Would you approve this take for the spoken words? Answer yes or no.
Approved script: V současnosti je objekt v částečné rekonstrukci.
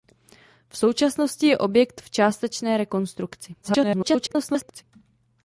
no